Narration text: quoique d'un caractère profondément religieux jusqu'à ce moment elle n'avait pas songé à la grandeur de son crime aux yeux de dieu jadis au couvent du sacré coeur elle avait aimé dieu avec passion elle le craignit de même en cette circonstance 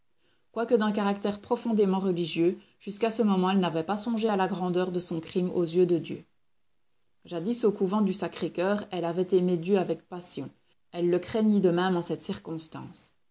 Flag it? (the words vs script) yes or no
no